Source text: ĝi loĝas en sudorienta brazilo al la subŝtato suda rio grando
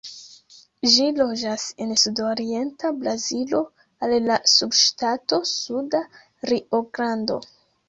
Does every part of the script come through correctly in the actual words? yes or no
yes